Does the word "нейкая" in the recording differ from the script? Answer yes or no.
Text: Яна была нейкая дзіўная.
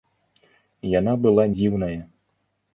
yes